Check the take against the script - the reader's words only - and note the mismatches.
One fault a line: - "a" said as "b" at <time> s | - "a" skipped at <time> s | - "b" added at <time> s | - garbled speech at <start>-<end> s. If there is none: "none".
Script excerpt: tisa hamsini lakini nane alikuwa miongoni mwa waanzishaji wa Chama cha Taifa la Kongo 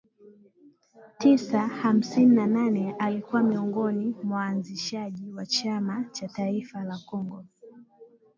- "lakini" said as "na" at 2.4 s